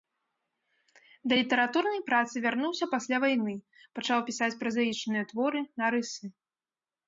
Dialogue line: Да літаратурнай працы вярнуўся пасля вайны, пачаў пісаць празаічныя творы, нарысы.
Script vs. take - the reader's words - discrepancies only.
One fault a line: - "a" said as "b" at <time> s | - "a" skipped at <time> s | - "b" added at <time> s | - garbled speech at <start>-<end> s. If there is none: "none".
none